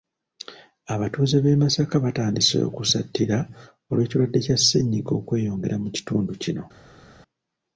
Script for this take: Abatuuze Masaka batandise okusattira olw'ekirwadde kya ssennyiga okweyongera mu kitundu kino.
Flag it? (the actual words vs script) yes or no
yes